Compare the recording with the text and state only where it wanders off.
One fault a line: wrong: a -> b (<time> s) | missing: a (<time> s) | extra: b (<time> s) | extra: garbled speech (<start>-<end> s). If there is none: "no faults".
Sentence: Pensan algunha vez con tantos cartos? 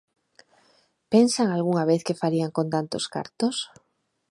extra: que farían (2.1 s)